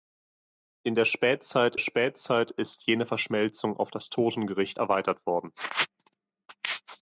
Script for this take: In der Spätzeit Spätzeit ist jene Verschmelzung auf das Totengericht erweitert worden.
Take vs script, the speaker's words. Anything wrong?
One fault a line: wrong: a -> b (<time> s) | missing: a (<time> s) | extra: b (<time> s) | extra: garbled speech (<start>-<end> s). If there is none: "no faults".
no faults